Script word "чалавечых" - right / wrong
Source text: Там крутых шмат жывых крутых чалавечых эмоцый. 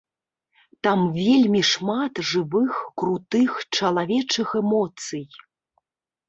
right